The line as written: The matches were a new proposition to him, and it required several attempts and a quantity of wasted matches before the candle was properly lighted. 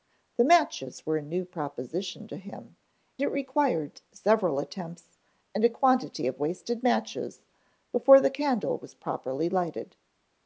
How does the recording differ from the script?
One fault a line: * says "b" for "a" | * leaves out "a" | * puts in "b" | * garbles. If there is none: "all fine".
* leaves out "and"